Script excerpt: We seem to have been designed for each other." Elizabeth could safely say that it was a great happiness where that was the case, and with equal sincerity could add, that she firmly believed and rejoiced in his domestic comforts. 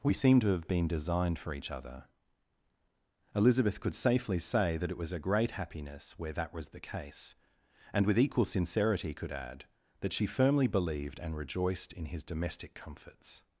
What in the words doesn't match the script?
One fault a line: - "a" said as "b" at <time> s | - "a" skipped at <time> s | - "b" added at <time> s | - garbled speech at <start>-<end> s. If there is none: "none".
none